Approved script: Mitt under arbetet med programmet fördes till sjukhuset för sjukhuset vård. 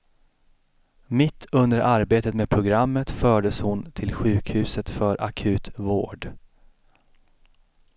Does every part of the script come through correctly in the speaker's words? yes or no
no